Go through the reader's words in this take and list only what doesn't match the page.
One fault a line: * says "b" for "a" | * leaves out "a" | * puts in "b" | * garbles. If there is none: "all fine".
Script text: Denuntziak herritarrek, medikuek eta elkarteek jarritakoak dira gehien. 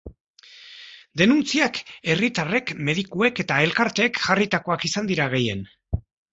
* puts in "izan"